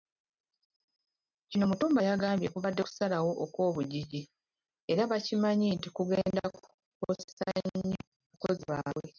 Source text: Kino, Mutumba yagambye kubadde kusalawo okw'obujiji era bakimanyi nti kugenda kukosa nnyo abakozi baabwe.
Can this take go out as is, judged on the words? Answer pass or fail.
pass